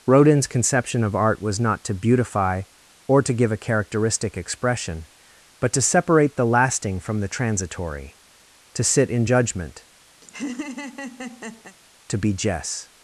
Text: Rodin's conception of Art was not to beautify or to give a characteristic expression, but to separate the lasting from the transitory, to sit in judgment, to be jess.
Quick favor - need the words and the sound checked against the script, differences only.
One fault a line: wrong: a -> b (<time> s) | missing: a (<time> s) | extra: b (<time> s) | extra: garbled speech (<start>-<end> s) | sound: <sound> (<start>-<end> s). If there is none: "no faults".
sound: laugh (10.2-11.8 s)